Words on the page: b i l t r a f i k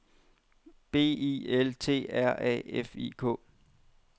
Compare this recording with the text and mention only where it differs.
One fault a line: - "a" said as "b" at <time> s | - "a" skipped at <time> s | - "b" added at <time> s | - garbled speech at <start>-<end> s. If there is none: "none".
none